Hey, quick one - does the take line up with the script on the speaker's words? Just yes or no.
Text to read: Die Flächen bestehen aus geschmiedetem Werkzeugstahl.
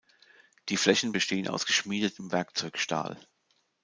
yes